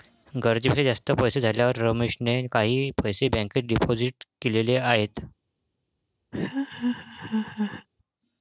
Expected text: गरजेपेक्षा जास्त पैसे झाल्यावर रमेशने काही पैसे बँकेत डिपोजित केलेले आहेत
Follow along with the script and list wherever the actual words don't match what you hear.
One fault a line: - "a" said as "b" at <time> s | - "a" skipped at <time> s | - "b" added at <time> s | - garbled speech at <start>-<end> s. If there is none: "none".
none